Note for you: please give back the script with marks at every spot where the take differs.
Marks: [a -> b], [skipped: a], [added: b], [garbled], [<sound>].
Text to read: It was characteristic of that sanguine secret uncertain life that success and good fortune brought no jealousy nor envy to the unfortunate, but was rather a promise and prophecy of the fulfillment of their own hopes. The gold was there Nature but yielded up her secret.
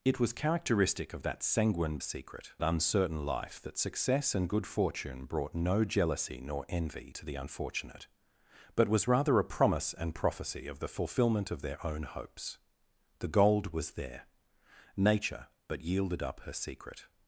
It was characteristic of that sanguine secret uncertain life that success and good fortune brought no jealousy nor envy to the unfortunate, but was rather a promise and prophecy of the fulfillment of their own hopes. The gold was there Nature but yielded up her secret.